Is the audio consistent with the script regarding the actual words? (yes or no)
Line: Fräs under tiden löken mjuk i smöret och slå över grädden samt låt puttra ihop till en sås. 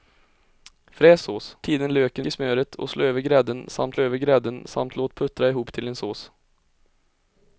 no